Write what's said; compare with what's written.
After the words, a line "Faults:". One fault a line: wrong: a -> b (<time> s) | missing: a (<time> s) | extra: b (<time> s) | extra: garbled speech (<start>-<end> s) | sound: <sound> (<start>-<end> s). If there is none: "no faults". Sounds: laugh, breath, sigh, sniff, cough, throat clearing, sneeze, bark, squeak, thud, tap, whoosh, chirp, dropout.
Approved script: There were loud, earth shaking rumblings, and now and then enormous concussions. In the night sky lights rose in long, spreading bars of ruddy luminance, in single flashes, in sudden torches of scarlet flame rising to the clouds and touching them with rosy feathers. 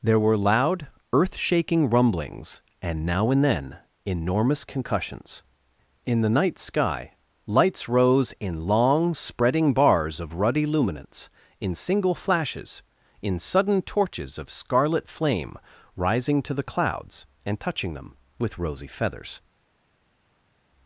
There were loud, earth shaking rumblings, and now and then enormous concussions. In the night sky lights rose in long, spreading bars of ruddy luminance, in single flashes, in sudden torches of scarlet flame rising to the clouds and touching them with rosy feathers.
Faults:
no faults